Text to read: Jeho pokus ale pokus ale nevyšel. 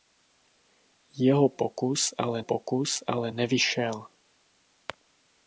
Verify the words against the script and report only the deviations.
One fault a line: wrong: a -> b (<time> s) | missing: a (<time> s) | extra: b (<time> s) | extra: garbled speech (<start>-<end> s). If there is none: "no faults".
no faults